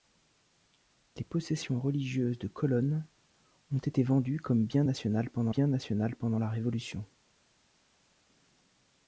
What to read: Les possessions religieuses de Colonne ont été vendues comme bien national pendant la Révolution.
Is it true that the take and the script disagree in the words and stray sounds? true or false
true